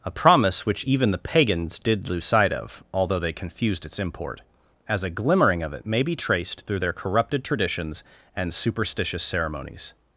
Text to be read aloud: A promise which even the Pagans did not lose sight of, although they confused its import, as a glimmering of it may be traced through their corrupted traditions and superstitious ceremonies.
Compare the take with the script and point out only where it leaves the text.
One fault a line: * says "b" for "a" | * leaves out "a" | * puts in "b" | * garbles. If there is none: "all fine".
* leaves out "not"